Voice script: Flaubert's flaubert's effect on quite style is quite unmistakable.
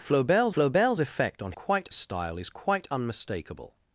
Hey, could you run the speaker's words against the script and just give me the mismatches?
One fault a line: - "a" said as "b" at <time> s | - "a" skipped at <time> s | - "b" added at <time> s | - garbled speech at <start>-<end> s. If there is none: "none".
none